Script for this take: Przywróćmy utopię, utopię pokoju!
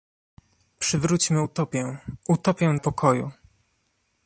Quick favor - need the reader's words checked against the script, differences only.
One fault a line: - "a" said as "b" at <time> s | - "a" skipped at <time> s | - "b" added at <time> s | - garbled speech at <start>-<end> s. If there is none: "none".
none